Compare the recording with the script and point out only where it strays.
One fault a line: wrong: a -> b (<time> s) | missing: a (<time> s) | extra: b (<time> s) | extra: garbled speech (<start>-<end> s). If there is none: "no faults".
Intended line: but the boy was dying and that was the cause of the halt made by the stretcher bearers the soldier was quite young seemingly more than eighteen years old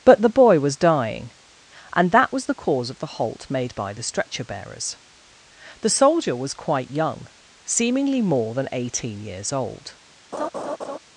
no faults